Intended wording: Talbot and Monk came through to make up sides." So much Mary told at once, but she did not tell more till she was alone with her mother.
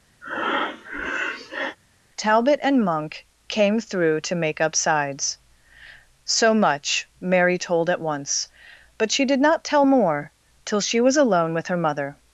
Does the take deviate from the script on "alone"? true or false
false